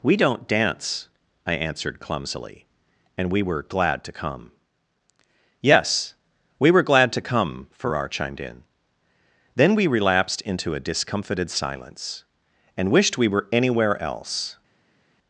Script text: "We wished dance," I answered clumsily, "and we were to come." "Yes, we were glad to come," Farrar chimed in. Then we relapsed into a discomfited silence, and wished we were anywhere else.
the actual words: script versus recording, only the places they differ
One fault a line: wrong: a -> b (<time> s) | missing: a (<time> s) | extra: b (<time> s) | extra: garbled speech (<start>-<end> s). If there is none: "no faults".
wrong: wished -> don't (0.2 s)
extra: glad (3.6 s)